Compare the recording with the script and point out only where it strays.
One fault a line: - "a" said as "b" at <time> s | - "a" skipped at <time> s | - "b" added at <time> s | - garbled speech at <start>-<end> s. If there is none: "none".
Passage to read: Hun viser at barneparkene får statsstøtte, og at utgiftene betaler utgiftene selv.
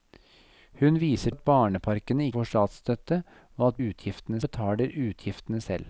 none